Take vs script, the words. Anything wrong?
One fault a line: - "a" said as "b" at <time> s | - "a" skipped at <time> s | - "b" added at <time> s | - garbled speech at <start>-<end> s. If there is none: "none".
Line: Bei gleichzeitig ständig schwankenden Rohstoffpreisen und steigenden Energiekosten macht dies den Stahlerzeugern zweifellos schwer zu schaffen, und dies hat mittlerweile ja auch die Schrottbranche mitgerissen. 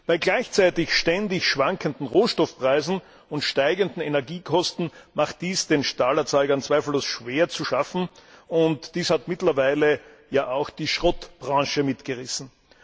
none